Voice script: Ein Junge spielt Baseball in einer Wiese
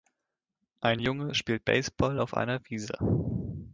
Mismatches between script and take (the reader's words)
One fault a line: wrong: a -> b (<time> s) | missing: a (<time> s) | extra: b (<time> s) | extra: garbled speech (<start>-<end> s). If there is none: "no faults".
wrong: in -> auf (2.2 s)